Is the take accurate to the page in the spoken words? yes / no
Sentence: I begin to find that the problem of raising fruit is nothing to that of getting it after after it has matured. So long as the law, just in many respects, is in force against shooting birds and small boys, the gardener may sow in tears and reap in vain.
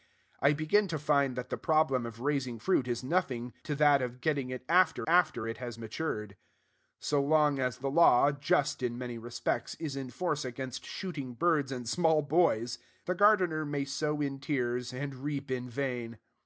yes